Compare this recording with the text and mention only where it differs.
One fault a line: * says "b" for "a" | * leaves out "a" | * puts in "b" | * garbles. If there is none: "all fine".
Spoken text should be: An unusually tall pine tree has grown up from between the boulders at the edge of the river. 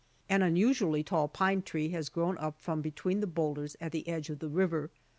all fine